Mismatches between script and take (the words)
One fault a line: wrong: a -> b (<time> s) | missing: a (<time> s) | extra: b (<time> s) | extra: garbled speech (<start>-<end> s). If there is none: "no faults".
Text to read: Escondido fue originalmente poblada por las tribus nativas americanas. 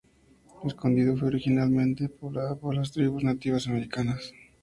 no faults